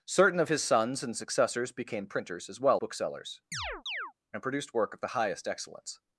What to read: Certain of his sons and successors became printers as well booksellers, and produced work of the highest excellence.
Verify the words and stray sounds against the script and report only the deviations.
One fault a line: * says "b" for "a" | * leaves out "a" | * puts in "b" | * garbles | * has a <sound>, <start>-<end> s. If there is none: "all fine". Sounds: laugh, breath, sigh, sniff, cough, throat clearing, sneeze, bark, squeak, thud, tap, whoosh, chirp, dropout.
* has a chirp, 3.5-4.1 s